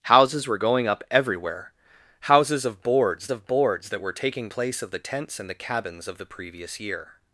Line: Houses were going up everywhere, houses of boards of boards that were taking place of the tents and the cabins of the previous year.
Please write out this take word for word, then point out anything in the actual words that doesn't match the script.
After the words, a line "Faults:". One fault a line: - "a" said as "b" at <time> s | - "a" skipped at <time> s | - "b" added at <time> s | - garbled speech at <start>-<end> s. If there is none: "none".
Houses were going up everywhere, houses of boards of boards that were taking place of the tents and the cabins of the previous year.
Faults:
none